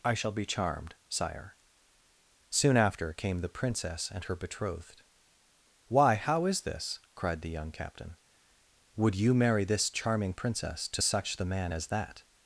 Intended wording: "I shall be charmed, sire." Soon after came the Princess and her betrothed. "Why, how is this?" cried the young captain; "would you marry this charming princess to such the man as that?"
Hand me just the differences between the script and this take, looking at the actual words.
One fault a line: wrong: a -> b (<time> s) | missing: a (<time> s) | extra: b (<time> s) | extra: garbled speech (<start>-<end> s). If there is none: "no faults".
no faults